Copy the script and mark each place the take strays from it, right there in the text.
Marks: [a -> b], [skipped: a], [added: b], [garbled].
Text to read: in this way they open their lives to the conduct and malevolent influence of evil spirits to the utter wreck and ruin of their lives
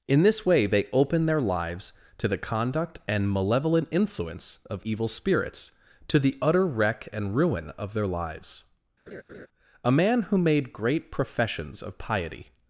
in this way they open their lives to the conduct and malevolent influence of evil spirits to the utter wreck and ruin of their lives [added: a man who made great professions of piety]